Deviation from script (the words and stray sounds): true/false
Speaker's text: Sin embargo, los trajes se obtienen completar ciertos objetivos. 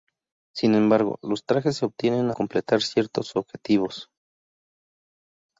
false